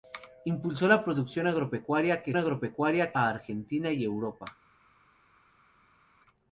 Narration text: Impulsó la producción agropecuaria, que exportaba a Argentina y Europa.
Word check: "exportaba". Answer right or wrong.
wrong